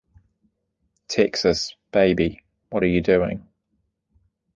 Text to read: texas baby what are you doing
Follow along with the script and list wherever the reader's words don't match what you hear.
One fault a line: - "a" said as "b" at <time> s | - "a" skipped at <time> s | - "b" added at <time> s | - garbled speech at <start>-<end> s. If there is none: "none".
none